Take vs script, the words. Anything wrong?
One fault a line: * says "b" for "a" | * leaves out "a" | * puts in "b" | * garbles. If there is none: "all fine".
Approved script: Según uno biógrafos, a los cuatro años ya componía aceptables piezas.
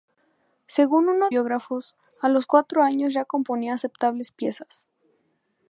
all fine